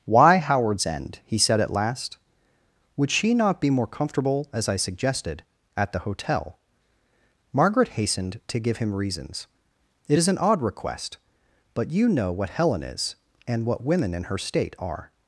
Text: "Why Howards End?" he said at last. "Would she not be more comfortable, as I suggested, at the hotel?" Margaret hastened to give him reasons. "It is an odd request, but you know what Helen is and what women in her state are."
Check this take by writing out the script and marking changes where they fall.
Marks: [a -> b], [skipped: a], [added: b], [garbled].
"Why Howards End?" he said at last. "Would she not be more comfortable, as I suggested, at the hotel?" Margaret hastened to give him reasons. "It is an odd request, but you know what Helen is and what women in her state are."